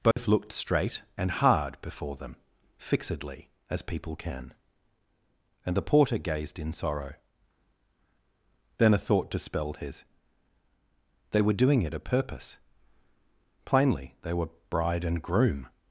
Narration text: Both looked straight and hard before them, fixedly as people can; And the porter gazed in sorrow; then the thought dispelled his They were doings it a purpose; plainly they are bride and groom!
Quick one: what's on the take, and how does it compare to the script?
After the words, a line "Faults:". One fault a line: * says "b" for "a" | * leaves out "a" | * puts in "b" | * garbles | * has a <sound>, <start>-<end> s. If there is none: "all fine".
Both looked straight and hard before them, fixedly as people can; And the porter gazed in sorrow; then a thought dispelled his They were doing it a purpose; plainly they were bride and groom!
Faults:
* has a dropout, 0.1-0.2 s
* says "a" for "the"
* says "doing" for "doings"
* says "were" for "are"